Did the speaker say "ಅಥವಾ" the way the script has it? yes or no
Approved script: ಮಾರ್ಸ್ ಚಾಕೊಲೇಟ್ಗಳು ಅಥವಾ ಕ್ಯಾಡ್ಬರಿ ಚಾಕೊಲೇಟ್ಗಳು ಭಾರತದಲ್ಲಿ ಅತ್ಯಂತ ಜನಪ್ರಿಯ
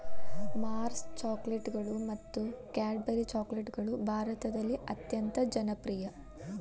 no